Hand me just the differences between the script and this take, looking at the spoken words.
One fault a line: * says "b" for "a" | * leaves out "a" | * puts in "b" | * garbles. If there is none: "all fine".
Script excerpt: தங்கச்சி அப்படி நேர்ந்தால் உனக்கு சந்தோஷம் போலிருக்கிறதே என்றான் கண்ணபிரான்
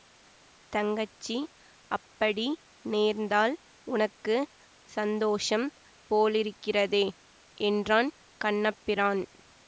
all fine